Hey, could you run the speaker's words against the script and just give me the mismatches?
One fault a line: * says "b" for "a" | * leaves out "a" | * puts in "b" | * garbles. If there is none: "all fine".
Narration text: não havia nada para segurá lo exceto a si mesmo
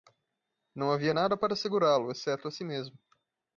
all fine